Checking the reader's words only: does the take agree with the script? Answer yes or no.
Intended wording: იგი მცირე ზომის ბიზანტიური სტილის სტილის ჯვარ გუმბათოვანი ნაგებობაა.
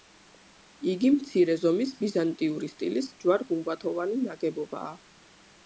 no